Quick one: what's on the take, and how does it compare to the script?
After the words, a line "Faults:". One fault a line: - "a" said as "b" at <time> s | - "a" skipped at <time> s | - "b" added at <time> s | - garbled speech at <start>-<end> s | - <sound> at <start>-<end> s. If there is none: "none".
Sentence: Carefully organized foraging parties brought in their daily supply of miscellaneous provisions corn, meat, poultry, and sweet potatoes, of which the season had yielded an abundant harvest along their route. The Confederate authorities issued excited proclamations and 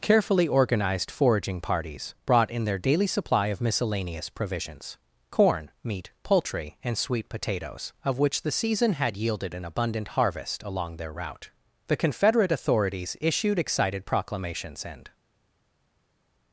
Carefully organized foraging parties brought in their daily supply of miscellaneous provisions corn, meat, poultry, and sweet potatoes, of which the season had yielded an abundant harvest along their route. The Confederate authorities issued excited proclamations and
Faults:
none